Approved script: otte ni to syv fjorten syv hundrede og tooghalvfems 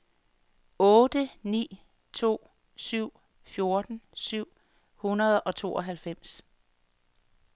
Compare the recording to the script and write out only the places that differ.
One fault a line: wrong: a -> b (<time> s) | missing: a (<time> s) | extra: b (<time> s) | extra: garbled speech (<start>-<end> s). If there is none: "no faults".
no faults